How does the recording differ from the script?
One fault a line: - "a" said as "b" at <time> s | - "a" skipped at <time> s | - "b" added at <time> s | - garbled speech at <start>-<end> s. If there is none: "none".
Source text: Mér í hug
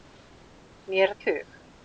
none